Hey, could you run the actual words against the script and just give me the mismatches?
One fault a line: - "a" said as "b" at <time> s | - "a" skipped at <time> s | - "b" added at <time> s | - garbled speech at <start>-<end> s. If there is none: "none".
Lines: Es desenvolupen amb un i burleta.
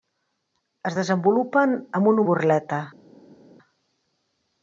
none